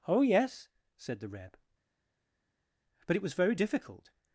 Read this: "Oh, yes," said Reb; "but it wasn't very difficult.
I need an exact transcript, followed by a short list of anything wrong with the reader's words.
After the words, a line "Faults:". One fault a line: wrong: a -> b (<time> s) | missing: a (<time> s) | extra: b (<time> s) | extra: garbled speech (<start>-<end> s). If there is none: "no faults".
"Oh, yes," said the Reb; "but it was very difficult.
Faults:
extra: the (1.2 s)
wrong: wasn't -> was (3.2 s)